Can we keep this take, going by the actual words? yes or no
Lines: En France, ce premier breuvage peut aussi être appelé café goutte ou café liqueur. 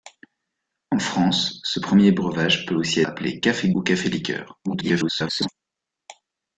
no